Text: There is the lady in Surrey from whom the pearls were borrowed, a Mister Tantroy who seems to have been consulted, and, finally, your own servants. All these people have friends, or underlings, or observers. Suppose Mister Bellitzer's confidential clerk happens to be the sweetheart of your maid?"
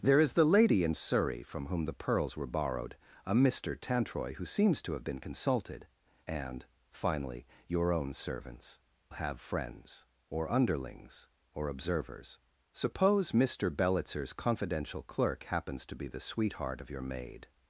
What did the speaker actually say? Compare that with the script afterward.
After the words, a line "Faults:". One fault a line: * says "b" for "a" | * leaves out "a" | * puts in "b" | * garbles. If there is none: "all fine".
There is the lady in Surrey from whom the pearls were borrowed, a Mister Tantroy who seems to have been consulted, and, finally, your own servants. Have friends, or underlings, or observers. Suppose Mister Bellitzer's confidential clerk happens to be the sweetheart of your maid?"
Faults:
* leaves out "All these people"